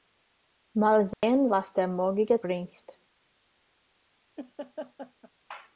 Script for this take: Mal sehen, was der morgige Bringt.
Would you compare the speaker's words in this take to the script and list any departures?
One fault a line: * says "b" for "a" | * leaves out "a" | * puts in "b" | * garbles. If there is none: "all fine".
all fine